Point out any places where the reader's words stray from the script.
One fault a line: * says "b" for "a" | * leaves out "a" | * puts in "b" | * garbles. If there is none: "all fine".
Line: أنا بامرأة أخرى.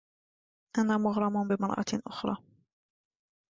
* puts in "مغرم"